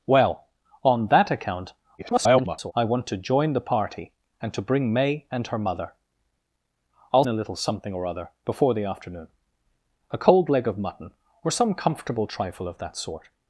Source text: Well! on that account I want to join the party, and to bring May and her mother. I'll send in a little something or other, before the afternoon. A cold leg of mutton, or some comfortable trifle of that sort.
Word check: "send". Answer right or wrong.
wrong